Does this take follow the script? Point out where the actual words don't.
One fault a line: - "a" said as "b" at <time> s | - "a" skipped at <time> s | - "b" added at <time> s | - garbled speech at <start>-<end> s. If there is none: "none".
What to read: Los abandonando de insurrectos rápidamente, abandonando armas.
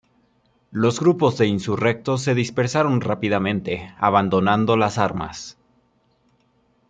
- "abandonando" said as "grupos" at 1.0 s
- "se dispersaron" added at 2.2 s
- "las" added at 4.8 s